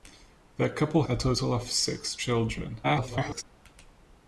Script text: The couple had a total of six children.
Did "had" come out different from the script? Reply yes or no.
yes